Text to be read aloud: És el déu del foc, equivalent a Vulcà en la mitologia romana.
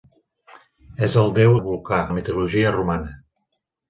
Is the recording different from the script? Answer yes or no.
yes